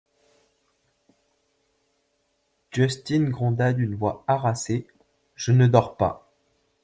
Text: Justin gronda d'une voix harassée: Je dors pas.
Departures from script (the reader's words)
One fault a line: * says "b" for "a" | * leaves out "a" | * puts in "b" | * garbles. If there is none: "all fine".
* puts in "ne"